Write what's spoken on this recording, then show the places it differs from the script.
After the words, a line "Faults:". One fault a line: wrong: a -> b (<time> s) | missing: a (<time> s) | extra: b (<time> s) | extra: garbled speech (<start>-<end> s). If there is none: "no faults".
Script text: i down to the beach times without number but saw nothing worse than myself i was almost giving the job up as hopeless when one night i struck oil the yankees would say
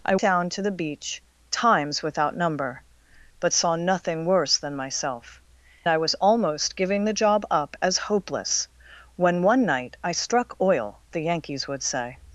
i down to the beach times without number but saw nothing worse than myself i was almost giving the job up as hopeless when one night i struck oil the yankees would say
Faults:
no faults